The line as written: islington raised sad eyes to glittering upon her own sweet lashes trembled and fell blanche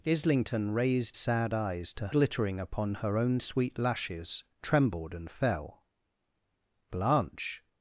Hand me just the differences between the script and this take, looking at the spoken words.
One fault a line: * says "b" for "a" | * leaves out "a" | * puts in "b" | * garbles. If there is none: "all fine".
all fine